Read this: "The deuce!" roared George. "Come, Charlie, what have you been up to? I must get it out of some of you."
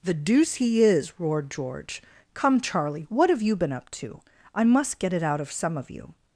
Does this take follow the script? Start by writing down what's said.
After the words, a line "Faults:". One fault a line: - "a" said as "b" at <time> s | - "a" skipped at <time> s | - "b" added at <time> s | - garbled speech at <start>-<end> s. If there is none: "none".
"The deuce he is!" roared George. "Come, Charlie, what have you been up to? I must get it out of some of you."
Faults:
- "he is" added at 0.6 s